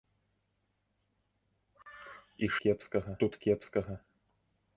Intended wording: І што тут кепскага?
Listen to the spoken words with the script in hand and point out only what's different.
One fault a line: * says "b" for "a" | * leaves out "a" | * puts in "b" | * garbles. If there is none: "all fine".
* says "кепскага" for "што"